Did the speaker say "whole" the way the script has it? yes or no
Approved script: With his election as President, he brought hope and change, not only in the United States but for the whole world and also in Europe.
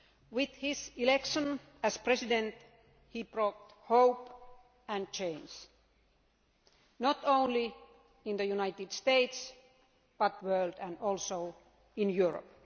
no